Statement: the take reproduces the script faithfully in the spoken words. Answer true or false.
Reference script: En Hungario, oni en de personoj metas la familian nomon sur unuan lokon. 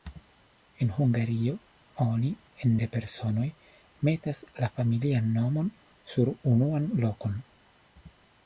true